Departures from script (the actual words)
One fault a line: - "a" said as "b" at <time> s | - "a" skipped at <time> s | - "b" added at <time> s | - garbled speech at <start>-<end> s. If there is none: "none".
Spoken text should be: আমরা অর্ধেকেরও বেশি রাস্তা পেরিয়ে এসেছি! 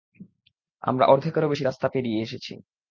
none